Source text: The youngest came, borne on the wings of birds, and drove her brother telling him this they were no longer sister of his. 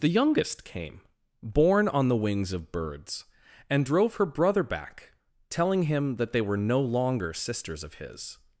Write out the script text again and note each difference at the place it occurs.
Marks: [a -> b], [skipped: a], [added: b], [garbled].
The youngest came, borne on the wings of birds, and drove her brother [added: back] telling him [this -> that] they were no longer [sister -> sisters] of his.